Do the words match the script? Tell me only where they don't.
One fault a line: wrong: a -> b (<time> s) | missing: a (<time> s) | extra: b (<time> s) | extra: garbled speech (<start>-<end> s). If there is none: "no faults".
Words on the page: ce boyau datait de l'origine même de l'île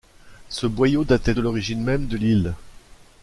no faults